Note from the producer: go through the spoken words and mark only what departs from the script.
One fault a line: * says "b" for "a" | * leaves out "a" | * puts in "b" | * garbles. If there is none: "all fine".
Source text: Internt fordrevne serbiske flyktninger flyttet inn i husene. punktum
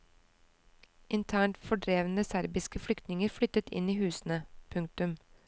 all fine